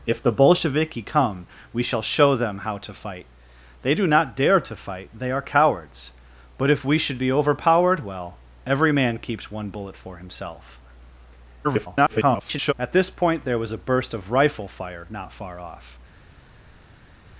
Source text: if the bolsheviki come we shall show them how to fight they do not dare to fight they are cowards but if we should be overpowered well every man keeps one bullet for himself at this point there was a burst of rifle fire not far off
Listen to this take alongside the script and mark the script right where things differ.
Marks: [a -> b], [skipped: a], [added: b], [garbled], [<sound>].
if the bolsheviki come we shall show them how to fight they do not dare to fight they are cowards but if we should be overpowered well every man keeps one bullet for himself [garbled] at this point there was a burst of rifle fire not far off